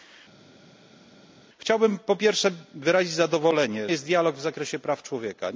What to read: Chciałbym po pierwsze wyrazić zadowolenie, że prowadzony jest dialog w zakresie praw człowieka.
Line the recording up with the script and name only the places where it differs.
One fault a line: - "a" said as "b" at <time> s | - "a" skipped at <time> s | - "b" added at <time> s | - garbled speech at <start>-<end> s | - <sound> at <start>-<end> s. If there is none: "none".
- "że prowadzony" skipped at 3.9 s